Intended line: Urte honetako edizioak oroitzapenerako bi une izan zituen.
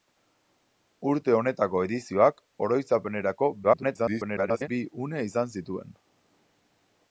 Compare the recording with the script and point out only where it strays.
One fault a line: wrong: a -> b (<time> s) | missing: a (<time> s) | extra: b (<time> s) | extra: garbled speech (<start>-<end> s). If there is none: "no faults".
extra: garbled speech (3.6-4.7 s)